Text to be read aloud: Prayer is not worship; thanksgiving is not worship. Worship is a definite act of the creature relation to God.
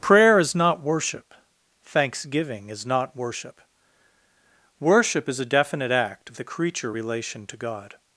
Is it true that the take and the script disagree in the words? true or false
false